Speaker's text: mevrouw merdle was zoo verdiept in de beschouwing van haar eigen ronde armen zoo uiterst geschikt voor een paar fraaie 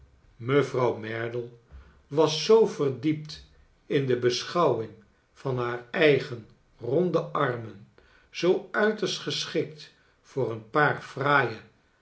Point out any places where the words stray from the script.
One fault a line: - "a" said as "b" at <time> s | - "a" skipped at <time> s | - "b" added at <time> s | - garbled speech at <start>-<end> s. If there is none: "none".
none